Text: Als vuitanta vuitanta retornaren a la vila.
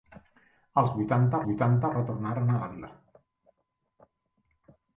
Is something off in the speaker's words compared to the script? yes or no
no